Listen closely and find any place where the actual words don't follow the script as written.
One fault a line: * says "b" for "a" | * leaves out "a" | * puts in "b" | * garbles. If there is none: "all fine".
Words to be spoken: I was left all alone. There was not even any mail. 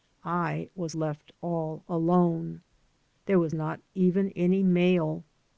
all fine